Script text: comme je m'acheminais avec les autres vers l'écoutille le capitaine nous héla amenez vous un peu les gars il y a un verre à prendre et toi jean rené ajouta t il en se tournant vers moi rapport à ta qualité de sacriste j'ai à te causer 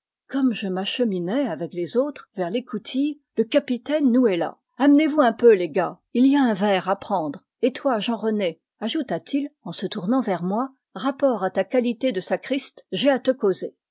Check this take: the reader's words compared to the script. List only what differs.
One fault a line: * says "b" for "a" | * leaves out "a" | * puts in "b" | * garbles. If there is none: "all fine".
all fine